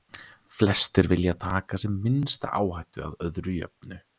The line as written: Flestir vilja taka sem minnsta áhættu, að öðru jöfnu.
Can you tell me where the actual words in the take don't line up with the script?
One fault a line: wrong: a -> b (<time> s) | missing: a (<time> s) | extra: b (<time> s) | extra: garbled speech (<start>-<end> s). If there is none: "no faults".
no faults